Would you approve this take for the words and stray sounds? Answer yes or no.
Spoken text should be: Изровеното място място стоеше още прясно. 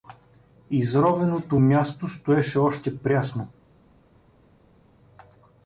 no